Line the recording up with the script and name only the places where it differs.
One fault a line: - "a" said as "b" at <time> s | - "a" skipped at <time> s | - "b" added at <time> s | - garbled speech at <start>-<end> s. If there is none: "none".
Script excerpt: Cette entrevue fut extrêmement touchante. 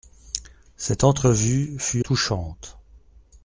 - "extrêmement" skipped at 2.0 s